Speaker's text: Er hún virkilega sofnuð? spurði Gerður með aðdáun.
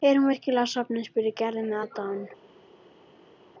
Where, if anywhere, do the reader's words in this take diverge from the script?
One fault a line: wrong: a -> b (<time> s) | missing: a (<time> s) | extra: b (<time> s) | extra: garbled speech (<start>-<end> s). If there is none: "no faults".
no faults